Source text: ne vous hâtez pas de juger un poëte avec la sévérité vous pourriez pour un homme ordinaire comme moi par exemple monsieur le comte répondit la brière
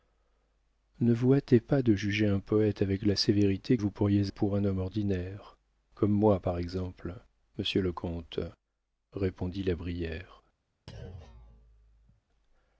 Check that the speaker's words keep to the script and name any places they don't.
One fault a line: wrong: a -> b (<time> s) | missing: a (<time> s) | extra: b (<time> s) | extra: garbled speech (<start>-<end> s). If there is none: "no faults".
no faults